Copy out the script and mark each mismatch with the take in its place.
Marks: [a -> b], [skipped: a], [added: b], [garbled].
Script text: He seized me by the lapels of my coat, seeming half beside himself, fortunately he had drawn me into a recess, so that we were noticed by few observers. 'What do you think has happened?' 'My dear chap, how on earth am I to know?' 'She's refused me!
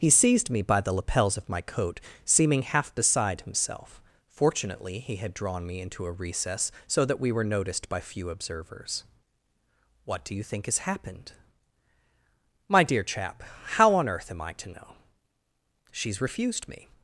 He seized me by the lapels of my coat, seeming half beside himself, fortunately he had drawn me into a recess, so that we were noticed by few observers. 'What do you think has happened?' 'My dear chap, how on earth am I to know?' 'She's refused me!